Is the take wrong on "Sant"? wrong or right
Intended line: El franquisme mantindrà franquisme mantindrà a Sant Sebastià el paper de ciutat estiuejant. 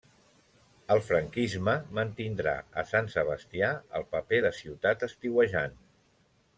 right